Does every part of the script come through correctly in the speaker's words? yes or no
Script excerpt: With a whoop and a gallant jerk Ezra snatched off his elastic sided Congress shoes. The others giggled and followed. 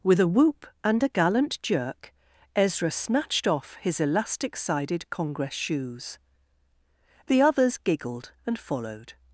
yes